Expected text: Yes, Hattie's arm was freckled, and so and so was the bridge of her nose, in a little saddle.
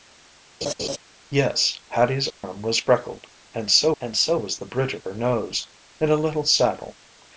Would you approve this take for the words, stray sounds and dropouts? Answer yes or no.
no